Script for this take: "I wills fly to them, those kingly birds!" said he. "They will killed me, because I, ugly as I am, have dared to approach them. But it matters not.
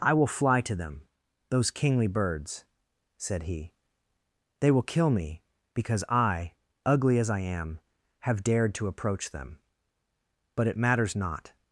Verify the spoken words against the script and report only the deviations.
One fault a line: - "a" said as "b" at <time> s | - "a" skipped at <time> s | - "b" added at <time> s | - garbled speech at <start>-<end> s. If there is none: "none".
- "wills" said as "will" at 0.1 s
- "killed" said as "kill" at 4.8 s